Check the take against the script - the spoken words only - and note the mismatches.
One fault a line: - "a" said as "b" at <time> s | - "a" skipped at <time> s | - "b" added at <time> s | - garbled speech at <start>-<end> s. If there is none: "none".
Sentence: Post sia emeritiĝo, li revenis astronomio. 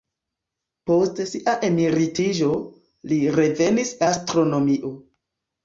none